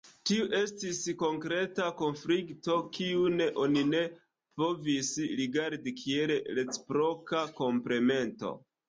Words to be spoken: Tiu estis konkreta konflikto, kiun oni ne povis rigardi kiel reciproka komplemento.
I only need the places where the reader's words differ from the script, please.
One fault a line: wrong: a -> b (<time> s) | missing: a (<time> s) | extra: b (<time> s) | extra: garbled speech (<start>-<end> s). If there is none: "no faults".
no faults